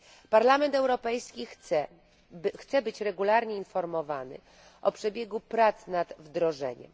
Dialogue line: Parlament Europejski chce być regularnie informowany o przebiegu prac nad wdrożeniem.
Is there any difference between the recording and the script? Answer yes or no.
no